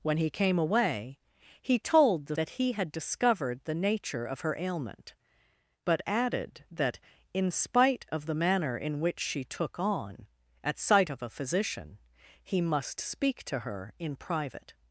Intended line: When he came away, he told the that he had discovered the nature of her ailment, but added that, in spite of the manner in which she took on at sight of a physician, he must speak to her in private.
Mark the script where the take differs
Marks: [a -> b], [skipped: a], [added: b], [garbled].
When he came away, he told the that he had discovered the nature of her ailment, but added that, in spite of the manner in which she took on at sight of a physician, he must speak to her in private.